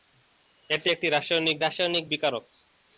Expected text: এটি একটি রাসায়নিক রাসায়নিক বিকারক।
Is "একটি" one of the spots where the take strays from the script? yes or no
no